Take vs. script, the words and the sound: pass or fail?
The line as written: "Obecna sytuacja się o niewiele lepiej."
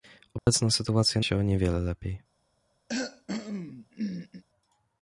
fail